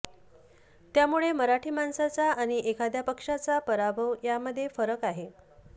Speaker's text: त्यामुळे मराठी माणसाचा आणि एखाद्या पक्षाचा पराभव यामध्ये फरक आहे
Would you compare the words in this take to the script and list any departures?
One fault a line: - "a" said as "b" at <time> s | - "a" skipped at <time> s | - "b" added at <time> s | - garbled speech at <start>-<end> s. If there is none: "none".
none